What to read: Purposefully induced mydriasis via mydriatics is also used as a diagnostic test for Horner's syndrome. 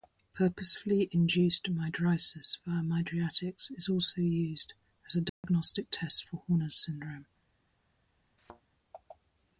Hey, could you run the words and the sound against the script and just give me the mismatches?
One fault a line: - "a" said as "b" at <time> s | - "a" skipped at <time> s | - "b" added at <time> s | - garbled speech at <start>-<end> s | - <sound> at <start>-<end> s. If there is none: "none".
- dropout at 5.3-5.4 s
- thud at 8.4-8.6 s